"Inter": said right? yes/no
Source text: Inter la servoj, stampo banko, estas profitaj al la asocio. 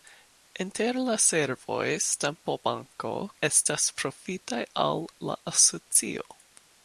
yes